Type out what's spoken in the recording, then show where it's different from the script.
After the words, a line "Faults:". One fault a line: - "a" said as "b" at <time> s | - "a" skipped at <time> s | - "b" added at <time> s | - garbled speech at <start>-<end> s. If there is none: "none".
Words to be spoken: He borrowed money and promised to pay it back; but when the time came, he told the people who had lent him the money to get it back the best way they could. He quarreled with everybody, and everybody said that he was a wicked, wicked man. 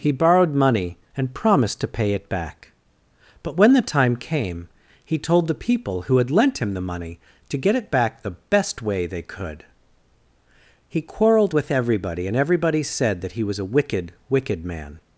He borrowed money and promised to pay it back; but when the time came, he told the people who had lent him the money to get it back the best way they could. He quarreled with everybody, and everybody said that he was a wicked, wicked man.
Faults:
none